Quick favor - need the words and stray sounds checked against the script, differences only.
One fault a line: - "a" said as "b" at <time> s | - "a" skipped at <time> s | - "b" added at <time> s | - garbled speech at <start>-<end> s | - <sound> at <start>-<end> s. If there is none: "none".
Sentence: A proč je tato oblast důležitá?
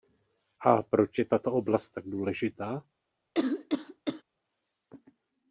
- "tak" added at 1.9 s
- cough at 3.3-4.2 s